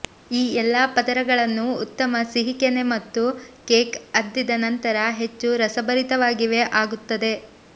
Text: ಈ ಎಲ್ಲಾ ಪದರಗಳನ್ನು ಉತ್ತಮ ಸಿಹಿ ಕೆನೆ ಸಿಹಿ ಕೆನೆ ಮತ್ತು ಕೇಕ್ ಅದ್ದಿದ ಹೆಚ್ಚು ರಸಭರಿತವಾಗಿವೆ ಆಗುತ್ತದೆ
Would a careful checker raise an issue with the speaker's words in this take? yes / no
yes